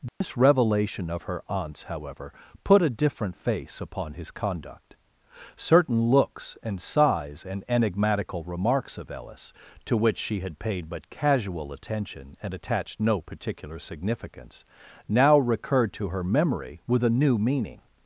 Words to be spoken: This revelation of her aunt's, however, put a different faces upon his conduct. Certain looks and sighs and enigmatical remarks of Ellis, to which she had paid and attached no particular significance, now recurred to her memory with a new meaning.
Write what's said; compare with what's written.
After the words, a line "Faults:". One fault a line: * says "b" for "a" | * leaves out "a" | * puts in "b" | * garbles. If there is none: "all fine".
This revelation of her aunt's, however, put a different face upon his conduct. Certain looks and sighs and enigmatical remarks of Ellis, to which she had paid but casual attention and attached no particular significance, now recurred to her memory with a new meaning.
Faults:
* says "face" for "faces"
* puts in "but casual attention"